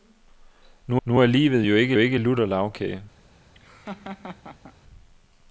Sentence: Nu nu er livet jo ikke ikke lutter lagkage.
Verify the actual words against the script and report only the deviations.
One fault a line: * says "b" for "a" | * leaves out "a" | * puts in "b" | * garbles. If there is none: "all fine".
all fine